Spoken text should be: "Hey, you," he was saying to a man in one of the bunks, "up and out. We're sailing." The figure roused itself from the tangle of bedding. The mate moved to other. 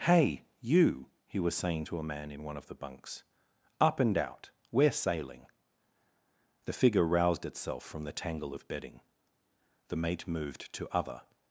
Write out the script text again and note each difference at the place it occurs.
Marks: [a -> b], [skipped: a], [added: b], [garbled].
"Hey, you," he was saying to a man in one of the bunks, "up and out. We're sailing." The figure roused itself from the tangle of bedding. The mate moved to other.